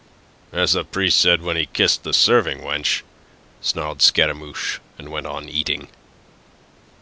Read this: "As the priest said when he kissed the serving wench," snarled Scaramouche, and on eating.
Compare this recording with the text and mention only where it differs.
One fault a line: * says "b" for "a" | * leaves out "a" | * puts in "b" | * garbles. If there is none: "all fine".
* puts in "went"